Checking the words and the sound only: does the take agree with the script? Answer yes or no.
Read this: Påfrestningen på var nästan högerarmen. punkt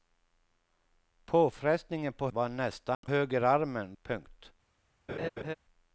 no